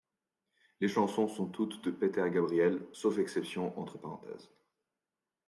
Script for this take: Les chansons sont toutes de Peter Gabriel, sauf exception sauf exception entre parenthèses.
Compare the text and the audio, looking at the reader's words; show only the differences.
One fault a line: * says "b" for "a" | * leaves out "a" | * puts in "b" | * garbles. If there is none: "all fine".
* leaves out "sauf exception"